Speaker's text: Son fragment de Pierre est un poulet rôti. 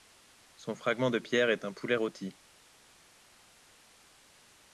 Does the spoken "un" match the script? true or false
true